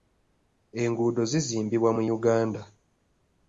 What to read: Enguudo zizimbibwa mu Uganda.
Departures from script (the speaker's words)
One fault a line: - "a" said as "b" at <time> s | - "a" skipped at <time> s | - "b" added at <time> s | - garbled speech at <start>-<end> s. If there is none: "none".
none